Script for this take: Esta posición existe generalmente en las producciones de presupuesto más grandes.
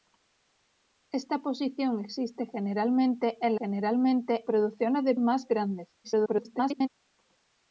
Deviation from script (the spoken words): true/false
true